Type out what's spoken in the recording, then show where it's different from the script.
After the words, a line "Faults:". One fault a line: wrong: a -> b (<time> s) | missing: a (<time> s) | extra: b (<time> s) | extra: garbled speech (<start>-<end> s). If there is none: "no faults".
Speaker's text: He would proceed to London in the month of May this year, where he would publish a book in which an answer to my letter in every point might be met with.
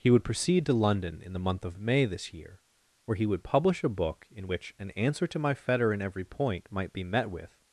He would proceed to London in the month of May this year, where he would publish a book in which an answer to my fetter in every point might be met with.
Faults:
wrong: letter -> fetter (5.5 s)